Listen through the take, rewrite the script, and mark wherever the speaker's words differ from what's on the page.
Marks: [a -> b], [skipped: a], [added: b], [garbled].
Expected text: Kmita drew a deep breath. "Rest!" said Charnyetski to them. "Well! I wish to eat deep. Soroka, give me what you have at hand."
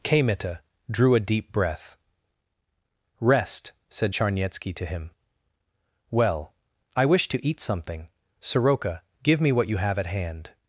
Kmita drew a deep breath. "Rest!" said Charnyetski to [them. -> him] "Well! I wish to eat [deep. -> something] Soroka, give me what you have at hand."